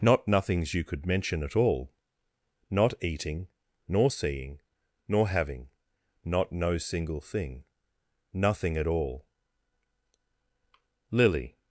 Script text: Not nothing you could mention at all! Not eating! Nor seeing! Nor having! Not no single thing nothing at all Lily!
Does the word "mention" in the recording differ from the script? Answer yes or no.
no